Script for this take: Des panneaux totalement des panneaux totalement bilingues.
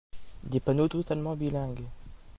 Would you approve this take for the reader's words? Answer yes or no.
no